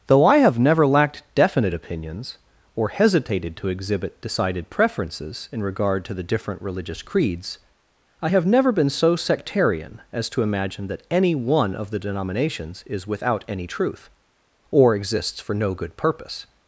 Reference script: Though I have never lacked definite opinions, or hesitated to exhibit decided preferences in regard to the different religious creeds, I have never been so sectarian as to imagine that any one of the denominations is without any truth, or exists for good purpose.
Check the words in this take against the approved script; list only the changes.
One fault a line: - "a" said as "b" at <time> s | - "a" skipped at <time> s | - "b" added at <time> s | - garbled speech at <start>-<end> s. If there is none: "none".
- "no" added at 15.5 s